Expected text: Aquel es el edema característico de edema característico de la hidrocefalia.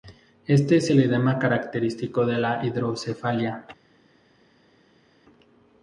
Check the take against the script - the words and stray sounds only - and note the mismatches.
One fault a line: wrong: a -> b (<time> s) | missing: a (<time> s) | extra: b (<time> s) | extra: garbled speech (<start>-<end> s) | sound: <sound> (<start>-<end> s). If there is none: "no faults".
wrong: Aquel -> Este (0.5 s)
missing: edema característico de (2.4 s)